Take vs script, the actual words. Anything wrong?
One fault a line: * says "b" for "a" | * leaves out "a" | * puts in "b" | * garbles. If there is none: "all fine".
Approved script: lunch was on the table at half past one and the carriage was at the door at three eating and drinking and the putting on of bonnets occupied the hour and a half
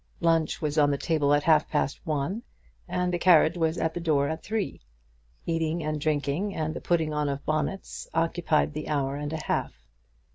all fine